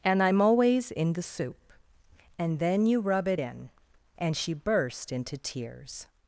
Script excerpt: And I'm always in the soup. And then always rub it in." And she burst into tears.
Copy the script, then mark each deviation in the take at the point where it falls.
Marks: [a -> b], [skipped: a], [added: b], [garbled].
And I'm always in the soup. And then [always -> you] rub it in." And she burst into tears.